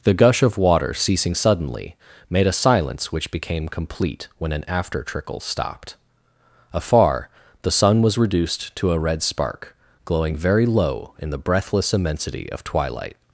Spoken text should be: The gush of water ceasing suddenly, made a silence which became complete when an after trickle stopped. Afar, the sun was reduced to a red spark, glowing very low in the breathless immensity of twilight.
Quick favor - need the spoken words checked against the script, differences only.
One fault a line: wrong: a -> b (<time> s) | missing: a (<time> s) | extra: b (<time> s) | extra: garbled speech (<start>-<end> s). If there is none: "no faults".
no faults